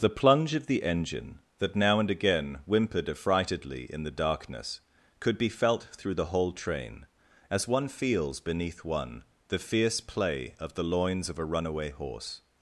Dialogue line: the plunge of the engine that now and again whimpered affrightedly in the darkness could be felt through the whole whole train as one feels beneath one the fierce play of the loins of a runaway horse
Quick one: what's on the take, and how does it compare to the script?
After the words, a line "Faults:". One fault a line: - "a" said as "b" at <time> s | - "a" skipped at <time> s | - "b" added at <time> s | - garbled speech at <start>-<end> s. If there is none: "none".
the plunge of the engine that now and again whimpered affrightedly in the darkness could be felt through the whole train as one feels beneath one the fierce play of the loins of a runaway horse
Faults:
- "whole" skipped at 6.5 s